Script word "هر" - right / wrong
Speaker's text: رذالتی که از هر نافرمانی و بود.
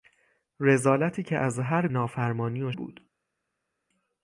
right